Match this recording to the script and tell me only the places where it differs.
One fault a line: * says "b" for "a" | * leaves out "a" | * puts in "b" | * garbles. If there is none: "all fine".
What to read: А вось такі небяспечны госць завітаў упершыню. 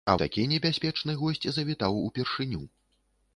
* leaves out "вось"